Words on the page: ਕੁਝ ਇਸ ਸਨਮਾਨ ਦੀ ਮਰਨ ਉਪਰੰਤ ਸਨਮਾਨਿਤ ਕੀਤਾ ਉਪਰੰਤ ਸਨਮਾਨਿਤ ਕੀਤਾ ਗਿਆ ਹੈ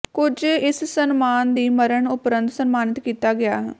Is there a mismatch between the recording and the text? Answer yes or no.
yes